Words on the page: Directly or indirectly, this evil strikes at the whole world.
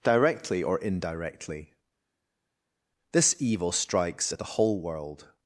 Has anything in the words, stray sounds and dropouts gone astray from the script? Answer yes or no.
no